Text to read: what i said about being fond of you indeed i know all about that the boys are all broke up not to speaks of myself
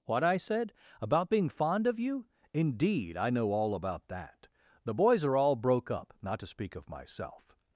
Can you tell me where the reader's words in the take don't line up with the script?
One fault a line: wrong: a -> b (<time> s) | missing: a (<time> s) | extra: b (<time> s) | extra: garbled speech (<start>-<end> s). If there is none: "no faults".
wrong: speaks -> speak (6.5 s)